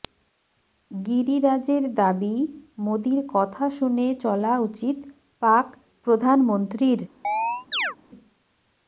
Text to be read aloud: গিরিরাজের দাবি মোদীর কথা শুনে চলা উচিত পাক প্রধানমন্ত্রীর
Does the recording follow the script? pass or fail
pass